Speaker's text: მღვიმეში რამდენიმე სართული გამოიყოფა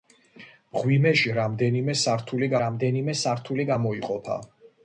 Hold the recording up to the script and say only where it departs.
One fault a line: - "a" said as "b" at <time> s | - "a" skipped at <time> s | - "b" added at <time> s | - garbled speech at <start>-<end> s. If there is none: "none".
- "რამდენიმე სართული" added at 2.6 s